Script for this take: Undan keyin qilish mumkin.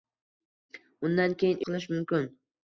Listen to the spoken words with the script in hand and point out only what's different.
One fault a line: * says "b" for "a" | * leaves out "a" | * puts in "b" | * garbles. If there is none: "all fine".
all fine